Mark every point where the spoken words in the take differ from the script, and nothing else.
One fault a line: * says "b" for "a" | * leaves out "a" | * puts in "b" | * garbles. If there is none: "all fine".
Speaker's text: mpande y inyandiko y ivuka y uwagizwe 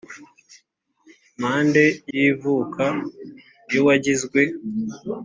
* leaves out "inyandiko"